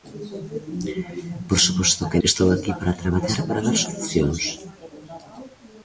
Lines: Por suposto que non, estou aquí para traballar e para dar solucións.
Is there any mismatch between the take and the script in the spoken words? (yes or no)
yes